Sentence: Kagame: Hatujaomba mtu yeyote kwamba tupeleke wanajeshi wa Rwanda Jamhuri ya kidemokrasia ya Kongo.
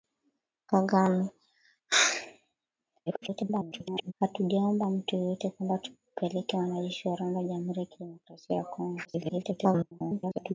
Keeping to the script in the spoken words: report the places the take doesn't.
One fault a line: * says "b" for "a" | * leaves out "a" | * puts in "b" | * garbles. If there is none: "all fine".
* garbles
* garbles